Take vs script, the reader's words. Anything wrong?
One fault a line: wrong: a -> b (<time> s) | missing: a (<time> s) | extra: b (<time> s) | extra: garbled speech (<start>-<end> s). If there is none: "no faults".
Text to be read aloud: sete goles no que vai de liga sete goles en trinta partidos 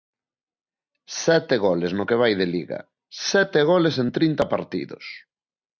no faults